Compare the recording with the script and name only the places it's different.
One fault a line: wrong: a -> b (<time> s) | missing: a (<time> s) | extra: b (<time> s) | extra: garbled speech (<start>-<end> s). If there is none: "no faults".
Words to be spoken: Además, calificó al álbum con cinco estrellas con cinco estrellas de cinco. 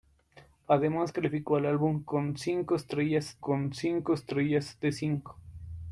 no faults